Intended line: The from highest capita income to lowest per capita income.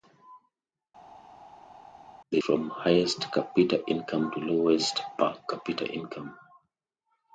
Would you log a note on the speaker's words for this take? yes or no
no